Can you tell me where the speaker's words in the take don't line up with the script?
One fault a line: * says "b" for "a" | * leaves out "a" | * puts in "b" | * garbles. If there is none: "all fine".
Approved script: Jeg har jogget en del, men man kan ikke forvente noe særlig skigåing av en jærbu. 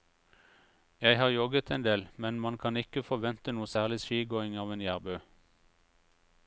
all fine